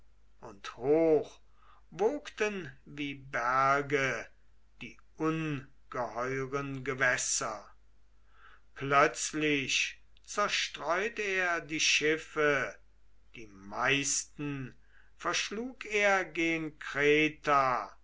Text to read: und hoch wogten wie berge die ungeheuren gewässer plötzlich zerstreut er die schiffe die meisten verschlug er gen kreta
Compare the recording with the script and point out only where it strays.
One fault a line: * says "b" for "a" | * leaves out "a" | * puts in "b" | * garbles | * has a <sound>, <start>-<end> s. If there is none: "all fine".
all fine